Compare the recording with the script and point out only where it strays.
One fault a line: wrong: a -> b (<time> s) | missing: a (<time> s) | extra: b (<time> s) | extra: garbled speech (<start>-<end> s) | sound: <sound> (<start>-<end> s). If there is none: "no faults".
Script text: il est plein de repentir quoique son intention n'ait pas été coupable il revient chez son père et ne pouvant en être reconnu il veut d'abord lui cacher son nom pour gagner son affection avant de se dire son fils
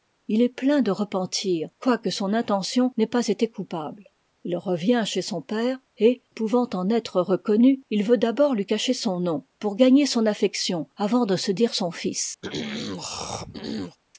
missing: ne (6.2 s)
sound: throat clearing (12.4-14.0 s)